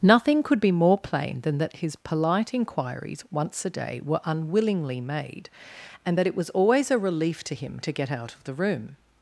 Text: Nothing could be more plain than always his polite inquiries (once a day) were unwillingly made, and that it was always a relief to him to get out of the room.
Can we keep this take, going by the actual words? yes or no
no